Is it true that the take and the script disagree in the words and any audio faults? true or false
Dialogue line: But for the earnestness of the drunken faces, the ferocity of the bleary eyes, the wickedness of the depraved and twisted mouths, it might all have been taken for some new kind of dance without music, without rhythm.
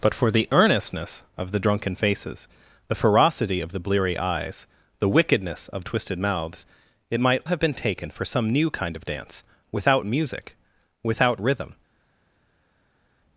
true